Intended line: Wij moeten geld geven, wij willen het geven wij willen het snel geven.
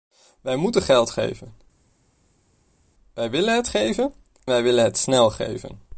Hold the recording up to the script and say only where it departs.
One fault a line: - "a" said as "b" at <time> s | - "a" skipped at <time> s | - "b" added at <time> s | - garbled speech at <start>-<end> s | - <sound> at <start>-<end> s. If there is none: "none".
none